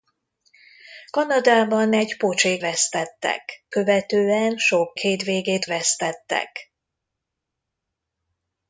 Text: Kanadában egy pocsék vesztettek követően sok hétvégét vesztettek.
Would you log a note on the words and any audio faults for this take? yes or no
no